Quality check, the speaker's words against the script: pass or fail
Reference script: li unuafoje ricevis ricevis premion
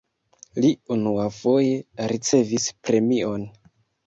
fail